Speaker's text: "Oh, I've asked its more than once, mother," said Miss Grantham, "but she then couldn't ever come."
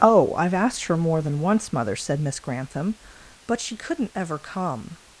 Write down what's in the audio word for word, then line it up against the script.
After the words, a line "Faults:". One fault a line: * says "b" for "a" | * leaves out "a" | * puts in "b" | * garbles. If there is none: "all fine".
"Oh, I've asked her more than once, mother," said Miss Grantham, "but she couldn't ever come."
Faults:
* says "her" for "its"
* leaves out "then"